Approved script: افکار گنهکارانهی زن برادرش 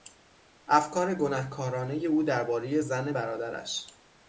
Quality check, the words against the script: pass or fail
fail